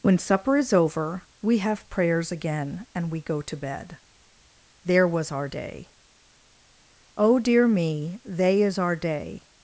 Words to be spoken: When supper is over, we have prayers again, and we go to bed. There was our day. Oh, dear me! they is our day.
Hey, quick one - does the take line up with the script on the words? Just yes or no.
yes